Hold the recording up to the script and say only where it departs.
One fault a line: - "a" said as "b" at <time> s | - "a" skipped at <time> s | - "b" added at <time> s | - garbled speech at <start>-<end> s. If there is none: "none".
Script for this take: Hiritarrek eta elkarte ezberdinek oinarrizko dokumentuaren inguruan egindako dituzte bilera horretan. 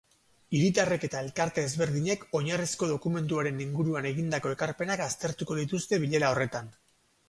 - "ekarpenak aztertuko" added at 4.6 s